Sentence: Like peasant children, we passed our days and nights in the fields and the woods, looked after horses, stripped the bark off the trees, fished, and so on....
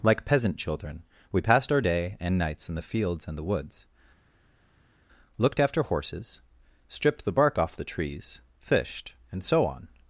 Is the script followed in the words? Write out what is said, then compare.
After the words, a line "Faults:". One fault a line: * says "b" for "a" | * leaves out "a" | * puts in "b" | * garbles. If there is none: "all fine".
Like peasant children, we passed our day and nights in the fields and the woods, looked after horses, stripped the bark off the trees, fished, and so on....
Faults:
* says "day" for "days"